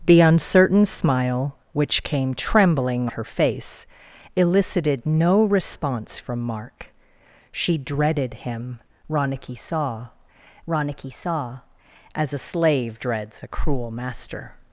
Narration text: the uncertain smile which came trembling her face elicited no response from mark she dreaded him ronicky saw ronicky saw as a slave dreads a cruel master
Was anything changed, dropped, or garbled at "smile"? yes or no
no